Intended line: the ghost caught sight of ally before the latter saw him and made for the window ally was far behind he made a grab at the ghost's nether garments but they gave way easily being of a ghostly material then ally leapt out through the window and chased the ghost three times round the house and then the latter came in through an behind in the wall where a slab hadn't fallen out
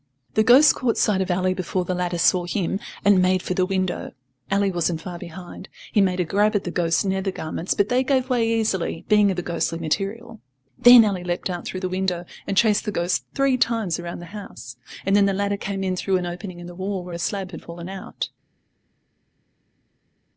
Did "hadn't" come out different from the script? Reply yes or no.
yes